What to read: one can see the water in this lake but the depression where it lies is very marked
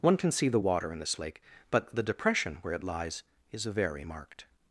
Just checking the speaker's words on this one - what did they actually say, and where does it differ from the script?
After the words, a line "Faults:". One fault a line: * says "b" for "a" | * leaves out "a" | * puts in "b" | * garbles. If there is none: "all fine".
one can see the water in this lake but the depression where it lies is very marked
Faults:
all fine